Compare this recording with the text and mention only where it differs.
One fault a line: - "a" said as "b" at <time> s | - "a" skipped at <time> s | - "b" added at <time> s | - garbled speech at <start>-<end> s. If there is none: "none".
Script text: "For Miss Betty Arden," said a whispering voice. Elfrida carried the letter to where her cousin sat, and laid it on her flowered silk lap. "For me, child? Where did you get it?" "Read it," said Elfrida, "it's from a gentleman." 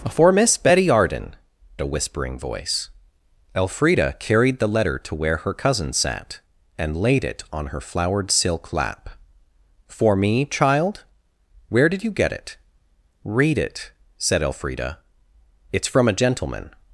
- "said" skipped at 1.4 s